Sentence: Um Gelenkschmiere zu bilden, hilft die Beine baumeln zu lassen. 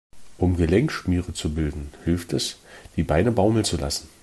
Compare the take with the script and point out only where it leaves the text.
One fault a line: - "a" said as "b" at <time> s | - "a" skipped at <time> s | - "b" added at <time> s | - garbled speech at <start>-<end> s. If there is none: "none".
- "es" added at 2.3 s